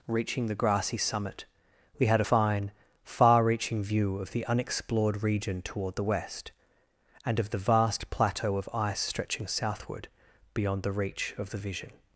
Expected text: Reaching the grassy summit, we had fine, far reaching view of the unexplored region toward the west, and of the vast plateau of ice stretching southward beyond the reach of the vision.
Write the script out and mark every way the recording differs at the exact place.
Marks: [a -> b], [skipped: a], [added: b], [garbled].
Reaching the grassy summit, we had fine, far reaching view of the unexplored region toward the west, and of the vast plateau of ice stretching southward beyond the reach of the vision.